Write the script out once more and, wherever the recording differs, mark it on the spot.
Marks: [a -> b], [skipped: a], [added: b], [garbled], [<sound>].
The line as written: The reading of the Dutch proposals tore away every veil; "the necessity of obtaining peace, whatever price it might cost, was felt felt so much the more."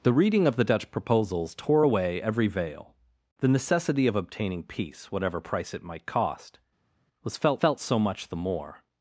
The reading of the Dutch proposals tore away every veil; "the necessity of obtaining peace, whatever price it might cost, was felt felt so much the more."